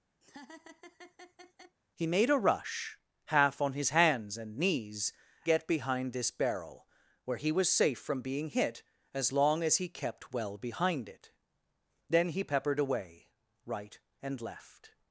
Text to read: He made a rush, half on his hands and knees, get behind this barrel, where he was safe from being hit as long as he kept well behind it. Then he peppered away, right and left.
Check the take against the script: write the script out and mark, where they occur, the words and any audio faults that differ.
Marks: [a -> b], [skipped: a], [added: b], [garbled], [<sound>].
[laugh] He made a rush, half on his hands and knees, get behind this barrel, where he was safe from being hit as long as he kept well behind it. Then he peppered away, right and left.